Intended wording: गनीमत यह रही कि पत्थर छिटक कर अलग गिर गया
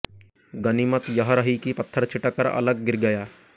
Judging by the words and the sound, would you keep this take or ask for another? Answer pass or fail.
pass